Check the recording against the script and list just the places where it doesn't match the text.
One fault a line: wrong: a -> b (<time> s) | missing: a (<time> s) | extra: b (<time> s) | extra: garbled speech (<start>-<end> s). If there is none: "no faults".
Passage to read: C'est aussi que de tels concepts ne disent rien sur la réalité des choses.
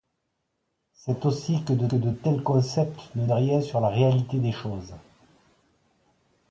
extra: que de (1.9 s)
missing: disent (3.3 s)